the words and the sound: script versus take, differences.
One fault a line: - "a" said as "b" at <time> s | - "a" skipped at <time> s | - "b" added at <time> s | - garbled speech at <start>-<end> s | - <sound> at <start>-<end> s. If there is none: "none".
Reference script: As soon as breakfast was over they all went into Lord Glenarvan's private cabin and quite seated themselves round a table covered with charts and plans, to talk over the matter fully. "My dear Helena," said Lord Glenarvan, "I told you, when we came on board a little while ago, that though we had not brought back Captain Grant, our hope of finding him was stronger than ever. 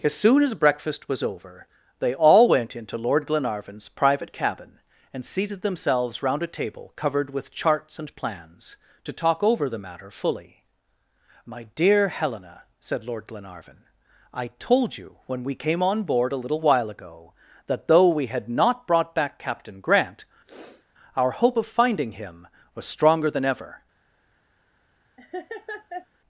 - "quite" skipped at 5.3 s
- sniff at 20.5-20.9 s
- laugh at 25.2-26.1 s